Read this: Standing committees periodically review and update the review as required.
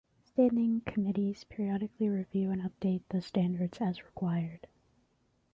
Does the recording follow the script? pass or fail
fail